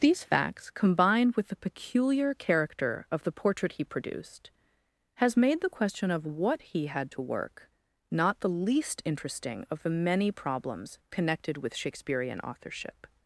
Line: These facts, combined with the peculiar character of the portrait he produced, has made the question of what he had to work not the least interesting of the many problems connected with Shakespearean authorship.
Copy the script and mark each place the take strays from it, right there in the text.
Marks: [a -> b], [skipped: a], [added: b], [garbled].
These facts, combined with the peculiar character of the portrait he produced, has made the question of what he had to work not the least interesting of the many problems connected with Shakespearean authorship.